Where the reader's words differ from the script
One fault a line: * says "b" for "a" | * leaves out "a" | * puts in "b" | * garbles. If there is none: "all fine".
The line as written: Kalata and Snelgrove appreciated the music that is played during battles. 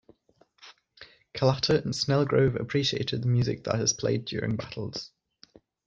all fine